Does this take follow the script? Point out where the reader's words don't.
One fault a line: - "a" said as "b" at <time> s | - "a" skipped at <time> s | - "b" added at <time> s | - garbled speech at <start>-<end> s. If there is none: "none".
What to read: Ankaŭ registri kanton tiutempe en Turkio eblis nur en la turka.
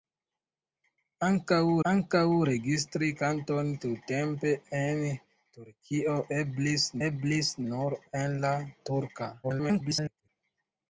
- "ankaŭ" added at 1.9 s
- "eblis" added at 7.1 s
- garbled speech at 9.4-10.3 s